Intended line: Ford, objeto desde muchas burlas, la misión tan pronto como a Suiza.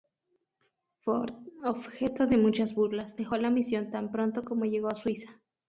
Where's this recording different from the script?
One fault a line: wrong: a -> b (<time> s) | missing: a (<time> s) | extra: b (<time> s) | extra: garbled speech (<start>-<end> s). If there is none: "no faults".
wrong: desde -> de (2.2 s)
extra: dejó (3.1 s)
extra: llegó (4.7 s)